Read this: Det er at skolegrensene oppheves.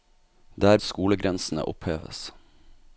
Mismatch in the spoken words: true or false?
false